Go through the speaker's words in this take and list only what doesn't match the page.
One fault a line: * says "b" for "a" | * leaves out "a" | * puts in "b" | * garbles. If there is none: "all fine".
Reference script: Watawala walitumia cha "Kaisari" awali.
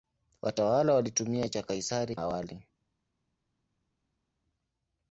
all fine